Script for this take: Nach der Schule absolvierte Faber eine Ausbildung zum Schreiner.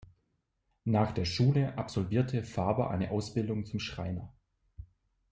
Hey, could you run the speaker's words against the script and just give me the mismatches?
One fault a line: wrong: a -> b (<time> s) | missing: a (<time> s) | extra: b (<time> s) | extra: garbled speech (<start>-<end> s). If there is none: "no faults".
no faults